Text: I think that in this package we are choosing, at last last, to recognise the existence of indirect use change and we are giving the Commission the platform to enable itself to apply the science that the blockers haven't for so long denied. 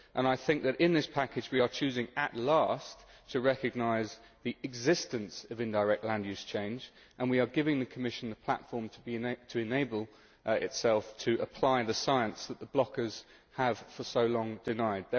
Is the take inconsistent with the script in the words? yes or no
yes